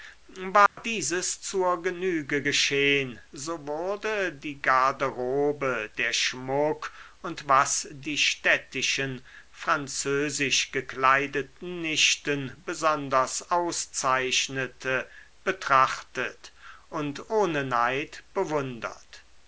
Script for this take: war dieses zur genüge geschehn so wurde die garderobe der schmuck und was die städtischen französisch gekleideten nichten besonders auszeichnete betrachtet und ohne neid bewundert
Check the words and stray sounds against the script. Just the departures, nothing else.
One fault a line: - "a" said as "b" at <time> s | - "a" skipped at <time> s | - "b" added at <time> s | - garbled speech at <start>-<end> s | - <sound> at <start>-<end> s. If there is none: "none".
- dropout at 0.7-0.8 s